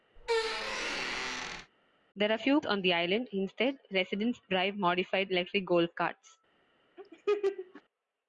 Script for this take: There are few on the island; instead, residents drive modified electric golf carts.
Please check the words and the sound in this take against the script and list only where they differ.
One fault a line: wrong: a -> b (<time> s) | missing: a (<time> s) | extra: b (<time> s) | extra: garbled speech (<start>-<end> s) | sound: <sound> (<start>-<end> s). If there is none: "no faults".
sound: squeak (0.2-1.7 s)
sound: laugh (7.0-7.8 s)